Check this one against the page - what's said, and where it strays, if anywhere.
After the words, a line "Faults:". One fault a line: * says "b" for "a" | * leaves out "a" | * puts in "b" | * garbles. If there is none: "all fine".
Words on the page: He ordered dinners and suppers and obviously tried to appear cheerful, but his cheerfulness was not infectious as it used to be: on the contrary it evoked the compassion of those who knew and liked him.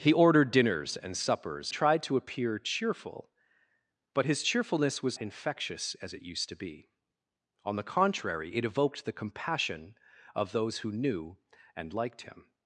He ordered dinners and suppers tried to appear cheerful, but his cheerfulness was infectious as it used to be: on the contrary it evoked the compassion of those who knew and liked him.
Faults:
* leaves out "and obviously"
* leaves out "not"